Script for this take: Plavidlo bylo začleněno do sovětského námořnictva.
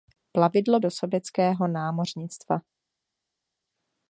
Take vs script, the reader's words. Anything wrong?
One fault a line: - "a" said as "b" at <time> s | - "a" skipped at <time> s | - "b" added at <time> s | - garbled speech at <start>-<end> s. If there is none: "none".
- "bylo začleněno" skipped at 0.8 s